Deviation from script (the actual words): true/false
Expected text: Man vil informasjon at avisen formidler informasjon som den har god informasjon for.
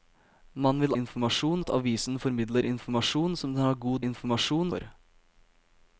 false